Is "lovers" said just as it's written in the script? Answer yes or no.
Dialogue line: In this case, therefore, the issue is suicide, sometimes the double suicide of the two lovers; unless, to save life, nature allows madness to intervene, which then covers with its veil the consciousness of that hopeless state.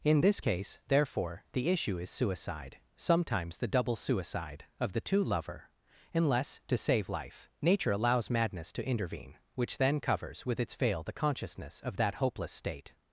no